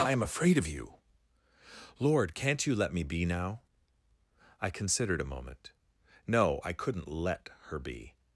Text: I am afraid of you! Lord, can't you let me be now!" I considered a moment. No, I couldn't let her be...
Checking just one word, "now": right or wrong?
right